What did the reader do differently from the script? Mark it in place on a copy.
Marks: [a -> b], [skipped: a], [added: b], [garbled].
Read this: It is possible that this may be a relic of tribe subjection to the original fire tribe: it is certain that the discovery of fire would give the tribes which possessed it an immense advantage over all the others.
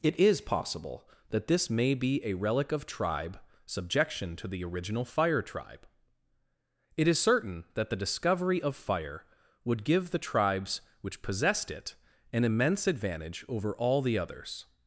It is possible that this may be a relic of tribe subjection to the original fire tribe: it is certain that the discovery of fire would give the tribes which possessed it an immense advantage over all the others.